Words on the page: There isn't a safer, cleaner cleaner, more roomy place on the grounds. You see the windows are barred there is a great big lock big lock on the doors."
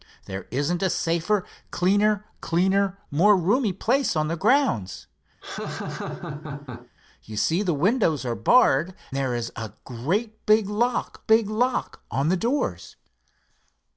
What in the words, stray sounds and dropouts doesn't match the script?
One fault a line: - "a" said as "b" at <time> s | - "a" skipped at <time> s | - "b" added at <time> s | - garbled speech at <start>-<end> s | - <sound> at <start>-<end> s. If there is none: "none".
- laugh at 5.4-6.9 s